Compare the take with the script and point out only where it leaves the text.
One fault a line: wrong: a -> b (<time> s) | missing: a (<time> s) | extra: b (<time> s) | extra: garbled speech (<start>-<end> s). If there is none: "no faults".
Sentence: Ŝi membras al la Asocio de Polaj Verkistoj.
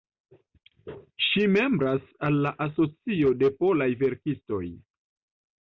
no faults